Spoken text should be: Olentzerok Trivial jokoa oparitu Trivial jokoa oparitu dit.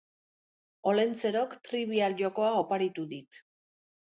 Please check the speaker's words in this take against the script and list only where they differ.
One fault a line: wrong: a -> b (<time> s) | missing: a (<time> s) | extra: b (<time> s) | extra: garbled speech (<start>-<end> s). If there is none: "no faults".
missing: Trivial jokoa oparitu (3.1 s)